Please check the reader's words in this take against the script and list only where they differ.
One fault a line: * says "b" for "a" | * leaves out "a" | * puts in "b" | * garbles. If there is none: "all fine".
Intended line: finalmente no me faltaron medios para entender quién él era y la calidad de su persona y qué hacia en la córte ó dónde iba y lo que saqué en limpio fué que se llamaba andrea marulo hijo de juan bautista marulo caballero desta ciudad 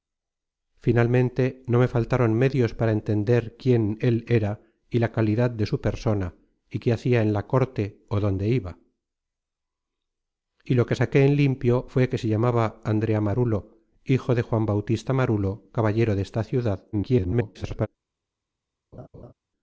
* garbles